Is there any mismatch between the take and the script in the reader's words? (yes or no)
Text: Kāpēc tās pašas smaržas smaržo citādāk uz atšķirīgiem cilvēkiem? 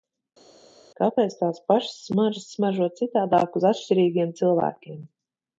no